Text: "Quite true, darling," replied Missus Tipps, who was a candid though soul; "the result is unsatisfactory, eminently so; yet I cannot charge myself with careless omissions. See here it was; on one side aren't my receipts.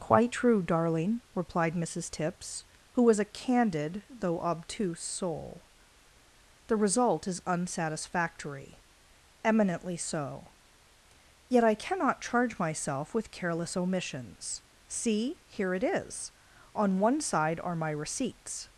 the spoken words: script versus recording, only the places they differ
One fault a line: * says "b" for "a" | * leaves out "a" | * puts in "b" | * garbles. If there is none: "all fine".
* puts in "obtuse"
* says "is" for "was"
* says "are" for "aren't"